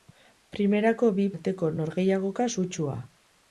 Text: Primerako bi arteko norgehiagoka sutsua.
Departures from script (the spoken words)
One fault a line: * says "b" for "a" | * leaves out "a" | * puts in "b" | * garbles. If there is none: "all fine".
all fine